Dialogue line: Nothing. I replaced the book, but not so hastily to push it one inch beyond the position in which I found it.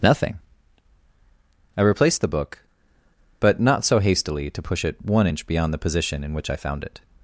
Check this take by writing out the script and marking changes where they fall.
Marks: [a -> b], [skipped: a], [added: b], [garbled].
Nothing. I replaced the book, but not so hastily to push it one inch beyond the position in which I found it.